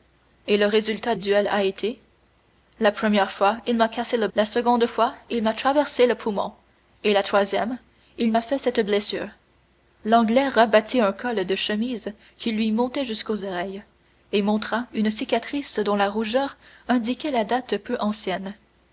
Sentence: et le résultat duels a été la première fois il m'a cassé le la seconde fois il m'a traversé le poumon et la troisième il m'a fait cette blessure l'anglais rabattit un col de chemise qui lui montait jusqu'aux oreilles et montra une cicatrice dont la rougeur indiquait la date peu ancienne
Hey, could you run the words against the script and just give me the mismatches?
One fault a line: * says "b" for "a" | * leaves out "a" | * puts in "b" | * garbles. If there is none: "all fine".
all fine